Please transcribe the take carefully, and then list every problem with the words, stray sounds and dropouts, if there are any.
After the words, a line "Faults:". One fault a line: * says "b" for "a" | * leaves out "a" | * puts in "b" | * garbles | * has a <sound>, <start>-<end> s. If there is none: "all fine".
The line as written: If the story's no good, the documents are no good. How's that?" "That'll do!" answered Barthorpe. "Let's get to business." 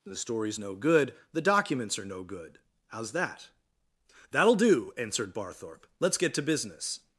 the story's no good, the documents are no good. How's that?" "That'll do!" answered Barthorpe. "Let's get to business."
Faults:
* leaves out "If"